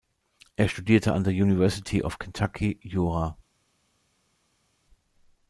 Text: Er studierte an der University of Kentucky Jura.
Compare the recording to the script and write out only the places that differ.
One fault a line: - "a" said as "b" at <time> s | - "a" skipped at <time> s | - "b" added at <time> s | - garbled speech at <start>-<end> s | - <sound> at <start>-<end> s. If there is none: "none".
none